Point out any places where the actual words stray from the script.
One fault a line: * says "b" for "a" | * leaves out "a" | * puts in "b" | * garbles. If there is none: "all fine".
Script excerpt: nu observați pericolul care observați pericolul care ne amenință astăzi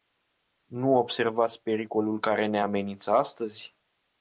* leaves out "observați pericolul care"